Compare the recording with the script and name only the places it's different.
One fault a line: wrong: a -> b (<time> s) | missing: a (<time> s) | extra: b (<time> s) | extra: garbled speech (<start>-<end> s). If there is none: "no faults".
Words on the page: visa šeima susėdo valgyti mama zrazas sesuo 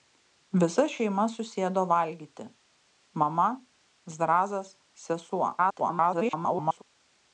extra: garbled speech (5.6-6.8 s)